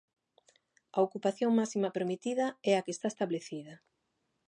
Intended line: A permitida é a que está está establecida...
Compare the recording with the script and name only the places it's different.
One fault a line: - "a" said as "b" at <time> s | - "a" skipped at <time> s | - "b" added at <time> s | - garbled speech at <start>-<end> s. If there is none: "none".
- "ocupación máxima" added at 1.1 s
- "está" skipped at 3.1 s